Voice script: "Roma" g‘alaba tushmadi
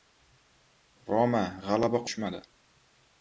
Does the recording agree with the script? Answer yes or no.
yes